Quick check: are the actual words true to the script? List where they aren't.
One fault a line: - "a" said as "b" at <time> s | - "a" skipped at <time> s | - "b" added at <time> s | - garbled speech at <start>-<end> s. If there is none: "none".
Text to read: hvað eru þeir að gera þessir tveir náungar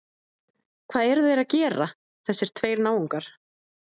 none